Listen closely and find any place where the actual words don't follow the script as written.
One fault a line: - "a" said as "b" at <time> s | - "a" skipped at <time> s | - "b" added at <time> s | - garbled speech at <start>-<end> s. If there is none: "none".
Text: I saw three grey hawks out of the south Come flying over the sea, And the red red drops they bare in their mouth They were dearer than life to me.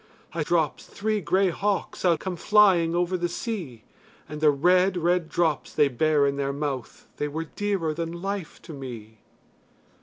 - "saw" said as "drops" at 0.4 s
- "of the south" skipped at 2.2 s